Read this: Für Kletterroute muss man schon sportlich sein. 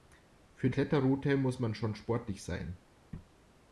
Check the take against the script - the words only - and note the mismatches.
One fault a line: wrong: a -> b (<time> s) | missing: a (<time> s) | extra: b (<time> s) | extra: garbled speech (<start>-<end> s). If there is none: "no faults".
no faults